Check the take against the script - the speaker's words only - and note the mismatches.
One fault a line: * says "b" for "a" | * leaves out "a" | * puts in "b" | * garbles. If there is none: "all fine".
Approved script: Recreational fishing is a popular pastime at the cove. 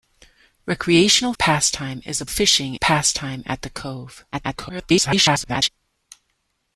* says "pastime" for "fishing"
* says "fishing" for "popular"
* garbles